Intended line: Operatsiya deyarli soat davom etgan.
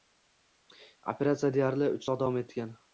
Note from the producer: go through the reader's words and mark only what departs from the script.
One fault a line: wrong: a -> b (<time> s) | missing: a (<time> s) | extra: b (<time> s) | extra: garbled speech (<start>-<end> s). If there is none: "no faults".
extra: uch (2.0 s)